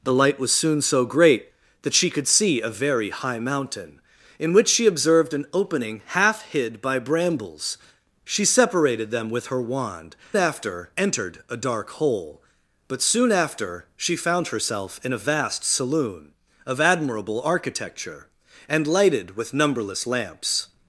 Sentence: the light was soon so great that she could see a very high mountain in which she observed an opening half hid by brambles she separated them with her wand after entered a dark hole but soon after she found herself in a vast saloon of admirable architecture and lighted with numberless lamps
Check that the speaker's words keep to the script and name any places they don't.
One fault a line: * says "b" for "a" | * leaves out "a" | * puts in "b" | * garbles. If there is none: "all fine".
all fine